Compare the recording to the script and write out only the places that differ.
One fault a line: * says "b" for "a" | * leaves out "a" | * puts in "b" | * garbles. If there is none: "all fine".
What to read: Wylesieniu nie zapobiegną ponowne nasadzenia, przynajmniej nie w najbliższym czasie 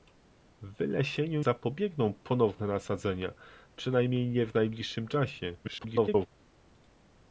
* leaves out "nie"
* garbles